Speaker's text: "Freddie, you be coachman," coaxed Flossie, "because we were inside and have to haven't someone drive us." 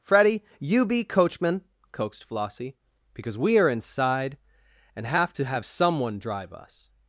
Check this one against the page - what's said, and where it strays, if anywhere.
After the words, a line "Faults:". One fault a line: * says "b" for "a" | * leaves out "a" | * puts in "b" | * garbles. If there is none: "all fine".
"Freddie, you be coachman," coaxed Flossie, "because we are inside and have to have someone drive us."
Faults:
* says "are" for "were"
* says "have" for "haven't"